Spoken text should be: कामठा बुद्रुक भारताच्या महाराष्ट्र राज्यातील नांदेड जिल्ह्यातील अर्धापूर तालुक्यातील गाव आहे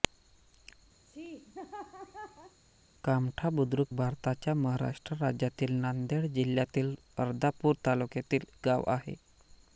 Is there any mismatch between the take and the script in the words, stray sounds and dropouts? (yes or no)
yes